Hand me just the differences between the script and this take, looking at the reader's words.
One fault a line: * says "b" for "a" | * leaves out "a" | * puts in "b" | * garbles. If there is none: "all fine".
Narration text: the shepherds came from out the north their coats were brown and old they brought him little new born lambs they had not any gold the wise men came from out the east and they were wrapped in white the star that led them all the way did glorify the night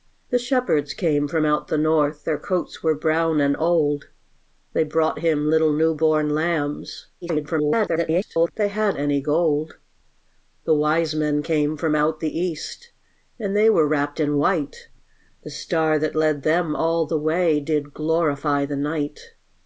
* garbles
* leaves out "not"